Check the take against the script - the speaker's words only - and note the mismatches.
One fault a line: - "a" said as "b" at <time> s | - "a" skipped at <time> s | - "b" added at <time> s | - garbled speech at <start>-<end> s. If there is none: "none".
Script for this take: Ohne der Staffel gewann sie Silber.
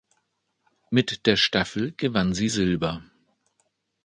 - "Ohne" said as "Mit" at 0.9 s